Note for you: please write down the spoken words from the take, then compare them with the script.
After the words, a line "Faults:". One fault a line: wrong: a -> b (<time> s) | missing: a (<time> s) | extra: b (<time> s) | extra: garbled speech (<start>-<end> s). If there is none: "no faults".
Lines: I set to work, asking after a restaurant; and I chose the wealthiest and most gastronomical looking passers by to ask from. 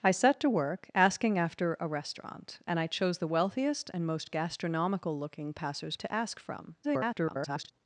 I set to work, asking after a restaurant; and I chose the wealthiest and most gastronomical looking passers to ask from. [garbled]
Faults:
missing: by (6.0 s)
extra: garbled speech (6.8-7.7 s)